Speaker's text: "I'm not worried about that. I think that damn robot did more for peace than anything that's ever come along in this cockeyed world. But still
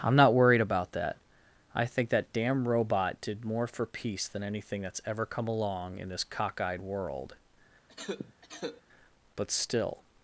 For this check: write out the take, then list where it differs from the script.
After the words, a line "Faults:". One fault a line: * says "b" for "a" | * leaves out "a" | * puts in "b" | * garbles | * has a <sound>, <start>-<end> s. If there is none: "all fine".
"I'm not worried about that. I think that damn robot did more for peace than anything that's ever come along in this cockeyed world. But still
Faults:
* has a cough, 7.9-8.8 s